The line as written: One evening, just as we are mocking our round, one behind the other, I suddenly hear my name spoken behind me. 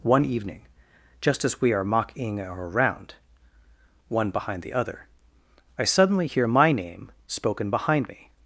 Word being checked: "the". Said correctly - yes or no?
yes